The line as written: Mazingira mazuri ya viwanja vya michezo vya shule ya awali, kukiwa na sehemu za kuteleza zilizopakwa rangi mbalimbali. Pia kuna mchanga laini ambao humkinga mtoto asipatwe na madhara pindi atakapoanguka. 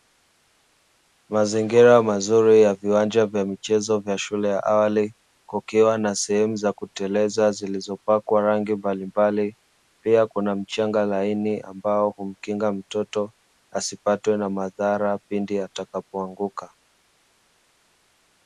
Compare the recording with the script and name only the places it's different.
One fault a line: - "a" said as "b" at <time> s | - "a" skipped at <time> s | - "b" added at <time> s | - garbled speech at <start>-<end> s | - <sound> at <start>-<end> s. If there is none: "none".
none